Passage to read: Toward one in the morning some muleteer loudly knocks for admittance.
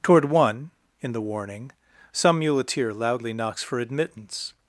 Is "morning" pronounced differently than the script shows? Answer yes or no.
yes